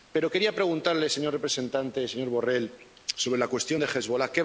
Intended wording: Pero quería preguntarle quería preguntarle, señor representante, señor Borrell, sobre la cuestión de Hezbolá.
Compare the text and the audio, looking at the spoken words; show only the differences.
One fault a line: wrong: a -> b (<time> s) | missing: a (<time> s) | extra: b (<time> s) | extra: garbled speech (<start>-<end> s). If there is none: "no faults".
missing: quería preguntarle (1.1 s)